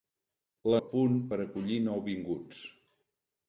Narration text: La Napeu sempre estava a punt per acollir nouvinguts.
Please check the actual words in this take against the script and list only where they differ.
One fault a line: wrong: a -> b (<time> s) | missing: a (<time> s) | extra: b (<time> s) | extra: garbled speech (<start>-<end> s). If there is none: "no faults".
missing: Napeu sempre estava (0.8 s)